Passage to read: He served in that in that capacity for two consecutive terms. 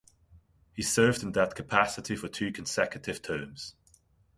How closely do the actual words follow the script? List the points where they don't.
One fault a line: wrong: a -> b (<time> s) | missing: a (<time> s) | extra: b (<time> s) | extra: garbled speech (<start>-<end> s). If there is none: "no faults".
missing: in that (1.5 s)